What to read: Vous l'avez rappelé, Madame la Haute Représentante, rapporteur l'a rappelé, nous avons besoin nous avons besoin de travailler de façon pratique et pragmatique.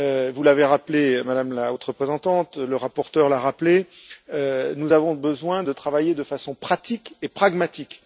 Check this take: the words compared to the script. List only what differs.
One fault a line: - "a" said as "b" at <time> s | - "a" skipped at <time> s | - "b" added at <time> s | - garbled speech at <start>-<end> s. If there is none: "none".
- "le" added at 2.6 s
- "nous avons besoin" skipped at 5.6 s